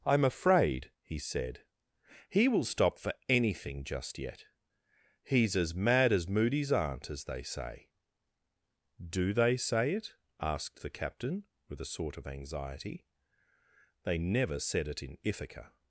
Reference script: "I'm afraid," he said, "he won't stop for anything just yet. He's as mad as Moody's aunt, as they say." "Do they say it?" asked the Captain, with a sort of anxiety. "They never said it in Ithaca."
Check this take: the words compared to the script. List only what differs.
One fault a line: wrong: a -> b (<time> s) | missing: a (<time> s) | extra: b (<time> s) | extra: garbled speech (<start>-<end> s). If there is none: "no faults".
wrong: won't -> will (2.5 s)